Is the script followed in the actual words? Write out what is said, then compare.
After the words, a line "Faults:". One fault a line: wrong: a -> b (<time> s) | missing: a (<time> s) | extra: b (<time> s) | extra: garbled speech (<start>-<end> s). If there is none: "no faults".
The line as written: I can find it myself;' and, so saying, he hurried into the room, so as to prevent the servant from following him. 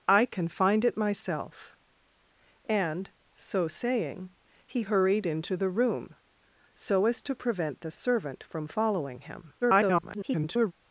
I can find it myself;' and, so saying, he hurried into the room, so as to prevent the servant from following him. [garbled]
Faults:
extra: garbled speech (9.6-10.7 s)